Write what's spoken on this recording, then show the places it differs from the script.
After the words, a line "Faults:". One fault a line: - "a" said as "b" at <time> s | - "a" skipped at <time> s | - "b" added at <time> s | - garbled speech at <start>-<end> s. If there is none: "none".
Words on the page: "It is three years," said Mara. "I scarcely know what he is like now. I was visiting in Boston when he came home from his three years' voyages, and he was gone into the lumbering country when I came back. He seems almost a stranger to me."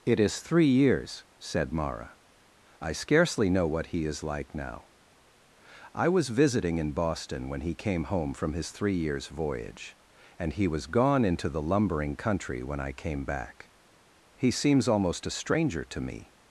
"It is three years," said Mara. "I scarcely know what he is like now. I was visiting in Boston when he came home from his three years' voyage, and he was gone into the lumbering country when I came back. He seems almost a stranger to me."
Faults:
- "voyages" said as "voyage" at 9.3 s